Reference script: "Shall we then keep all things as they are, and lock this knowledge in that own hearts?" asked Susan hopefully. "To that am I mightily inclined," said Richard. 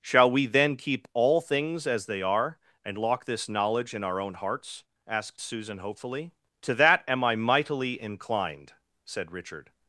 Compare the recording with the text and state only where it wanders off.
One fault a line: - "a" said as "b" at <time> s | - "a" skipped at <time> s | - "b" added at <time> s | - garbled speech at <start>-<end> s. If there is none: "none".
- "that" said as "our" at 4.0 s